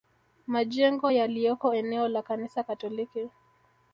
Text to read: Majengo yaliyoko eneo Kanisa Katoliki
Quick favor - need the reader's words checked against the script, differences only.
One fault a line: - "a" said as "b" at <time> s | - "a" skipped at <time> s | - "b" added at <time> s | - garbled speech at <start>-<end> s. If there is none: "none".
- "la" added at 2.1 s